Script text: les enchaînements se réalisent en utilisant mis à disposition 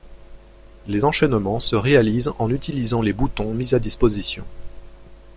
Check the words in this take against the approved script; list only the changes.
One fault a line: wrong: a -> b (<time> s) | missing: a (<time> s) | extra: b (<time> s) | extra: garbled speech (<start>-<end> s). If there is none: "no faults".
extra: les boutons (3.0 s)